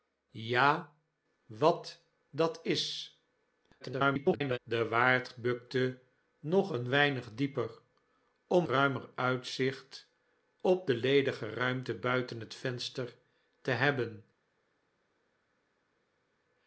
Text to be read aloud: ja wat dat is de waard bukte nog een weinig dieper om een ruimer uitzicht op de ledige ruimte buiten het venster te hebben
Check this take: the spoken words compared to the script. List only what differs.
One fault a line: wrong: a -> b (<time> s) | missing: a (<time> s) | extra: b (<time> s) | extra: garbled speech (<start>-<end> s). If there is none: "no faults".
extra: garbled speech (3.8-4.6 s)
missing: een (8.7 s)